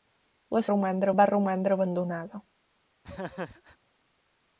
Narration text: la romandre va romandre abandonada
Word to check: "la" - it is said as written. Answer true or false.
true